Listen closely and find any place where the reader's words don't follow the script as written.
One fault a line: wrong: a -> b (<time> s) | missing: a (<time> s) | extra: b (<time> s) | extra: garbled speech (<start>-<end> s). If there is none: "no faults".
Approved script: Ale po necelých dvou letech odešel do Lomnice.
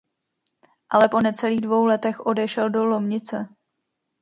no faults